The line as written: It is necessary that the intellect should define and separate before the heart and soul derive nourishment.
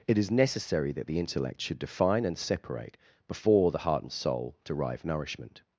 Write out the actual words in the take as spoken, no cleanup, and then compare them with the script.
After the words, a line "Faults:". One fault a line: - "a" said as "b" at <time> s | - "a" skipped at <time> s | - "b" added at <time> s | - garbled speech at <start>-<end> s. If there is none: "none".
It is necessary that the intellect should define and separate before the heart and soul derive nourishment.
Faults:
none